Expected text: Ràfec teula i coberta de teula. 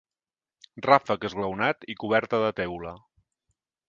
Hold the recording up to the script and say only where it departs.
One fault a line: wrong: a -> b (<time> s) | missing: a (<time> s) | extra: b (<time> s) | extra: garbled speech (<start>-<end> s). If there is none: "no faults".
wrong: teula -> esglaonat (1.3 s)